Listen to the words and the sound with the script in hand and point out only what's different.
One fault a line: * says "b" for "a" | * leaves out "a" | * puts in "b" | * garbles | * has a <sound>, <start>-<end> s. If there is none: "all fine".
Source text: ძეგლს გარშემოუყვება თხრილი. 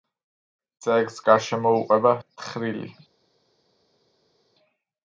all fine